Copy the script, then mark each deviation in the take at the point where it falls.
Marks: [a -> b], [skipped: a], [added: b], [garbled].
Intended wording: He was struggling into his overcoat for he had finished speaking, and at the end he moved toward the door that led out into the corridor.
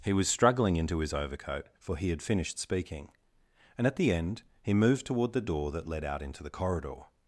He was struggling into his overcoat for he had finished speaking, and at the end he moved toward the door that led out into the corridor.